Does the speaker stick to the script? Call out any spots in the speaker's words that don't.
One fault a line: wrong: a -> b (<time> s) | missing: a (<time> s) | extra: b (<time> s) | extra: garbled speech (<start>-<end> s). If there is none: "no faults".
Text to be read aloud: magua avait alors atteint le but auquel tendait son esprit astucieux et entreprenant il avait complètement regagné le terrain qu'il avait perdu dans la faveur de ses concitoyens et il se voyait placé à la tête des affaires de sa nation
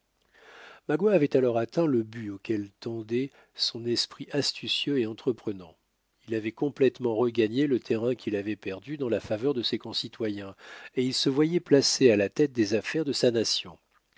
no faults